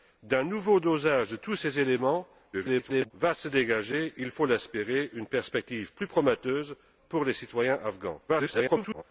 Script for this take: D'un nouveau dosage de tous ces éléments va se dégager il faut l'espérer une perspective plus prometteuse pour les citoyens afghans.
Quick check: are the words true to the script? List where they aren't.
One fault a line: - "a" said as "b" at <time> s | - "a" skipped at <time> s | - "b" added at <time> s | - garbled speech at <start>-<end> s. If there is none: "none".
- garbled speech at 2.5-3.1 s
- garbled speech at 8.3-9.0 s